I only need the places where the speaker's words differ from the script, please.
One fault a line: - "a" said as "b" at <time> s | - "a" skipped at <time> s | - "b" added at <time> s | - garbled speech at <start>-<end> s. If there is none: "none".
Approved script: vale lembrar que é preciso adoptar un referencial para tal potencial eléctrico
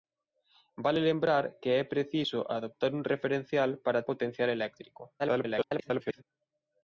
- "tal" skipped at 4.0 s
- garbled speech at 5.2-6.2 s